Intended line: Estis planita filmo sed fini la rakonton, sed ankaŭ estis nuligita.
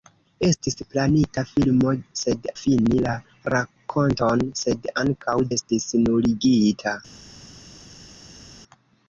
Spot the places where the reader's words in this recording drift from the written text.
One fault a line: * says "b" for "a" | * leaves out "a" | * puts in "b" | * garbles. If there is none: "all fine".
all fine